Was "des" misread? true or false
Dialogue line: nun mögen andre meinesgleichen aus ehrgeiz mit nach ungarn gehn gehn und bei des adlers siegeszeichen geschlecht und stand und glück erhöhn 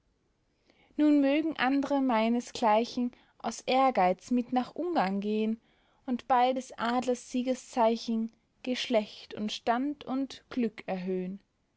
false